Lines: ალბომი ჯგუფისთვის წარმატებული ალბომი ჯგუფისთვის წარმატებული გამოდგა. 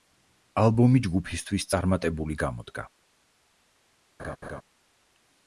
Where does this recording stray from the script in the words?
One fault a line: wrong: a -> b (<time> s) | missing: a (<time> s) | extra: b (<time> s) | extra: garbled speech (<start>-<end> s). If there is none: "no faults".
missing: ალბომი ჯგუფისთვის წარმატებული (2.4 s)